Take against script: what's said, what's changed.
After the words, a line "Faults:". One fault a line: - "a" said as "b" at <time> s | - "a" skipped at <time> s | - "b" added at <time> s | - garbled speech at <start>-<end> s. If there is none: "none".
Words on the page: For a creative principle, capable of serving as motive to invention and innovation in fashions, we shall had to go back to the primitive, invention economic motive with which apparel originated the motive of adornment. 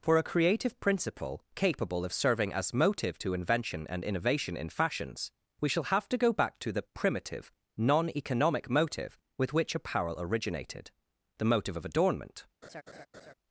For a creative principle, capable of serving as motive to invention and innovation in fashions, we shall have to go back to the primitive, non economic motive with which apparel originated the motive of adornment.
Faults:
- "had" said as "have" at 5.8 s
- "invention" said as "non" at 7.8 s